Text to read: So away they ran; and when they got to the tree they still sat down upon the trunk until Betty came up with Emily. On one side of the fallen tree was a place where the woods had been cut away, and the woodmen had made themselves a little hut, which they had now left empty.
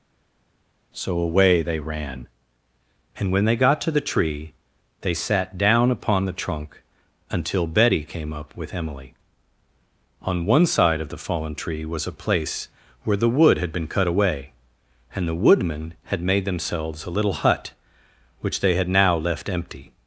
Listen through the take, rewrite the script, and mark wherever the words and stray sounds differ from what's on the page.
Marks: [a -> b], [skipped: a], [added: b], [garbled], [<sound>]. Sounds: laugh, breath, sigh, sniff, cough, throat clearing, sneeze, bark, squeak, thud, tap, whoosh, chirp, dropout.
So away they ran; and when they got to the tree they [skipped: still] sat down upon the trunk until Betty came up with Emily. On one side of the fallen tree was a place where the [woods -> wood] had been cut away, and the woodmen had made themselves a little hut, which they had now left empty.